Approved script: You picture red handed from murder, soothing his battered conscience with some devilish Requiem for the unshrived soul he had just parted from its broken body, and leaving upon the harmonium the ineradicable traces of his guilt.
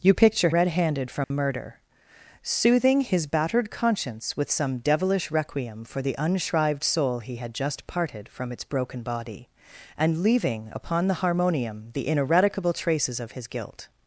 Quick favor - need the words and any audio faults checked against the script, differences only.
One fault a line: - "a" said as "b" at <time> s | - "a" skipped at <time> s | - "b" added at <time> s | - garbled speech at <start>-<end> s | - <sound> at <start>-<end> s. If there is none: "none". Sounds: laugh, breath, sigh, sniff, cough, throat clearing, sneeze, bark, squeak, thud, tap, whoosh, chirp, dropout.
- dropout at 1.2-1.3 s